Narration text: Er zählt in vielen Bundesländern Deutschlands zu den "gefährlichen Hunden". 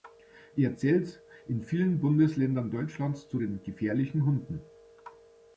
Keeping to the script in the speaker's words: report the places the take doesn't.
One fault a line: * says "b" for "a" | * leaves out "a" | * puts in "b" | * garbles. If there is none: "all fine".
all fine